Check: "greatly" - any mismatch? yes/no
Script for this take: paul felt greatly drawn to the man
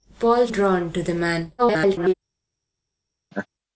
yes